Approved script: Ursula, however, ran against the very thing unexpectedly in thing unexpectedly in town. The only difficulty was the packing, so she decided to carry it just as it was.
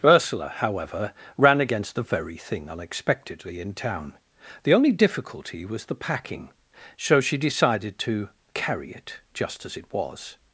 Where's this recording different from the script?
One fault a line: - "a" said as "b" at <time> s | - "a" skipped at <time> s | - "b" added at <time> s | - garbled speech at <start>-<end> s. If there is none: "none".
- "thing unexpectedly in" skipped at 3.7 s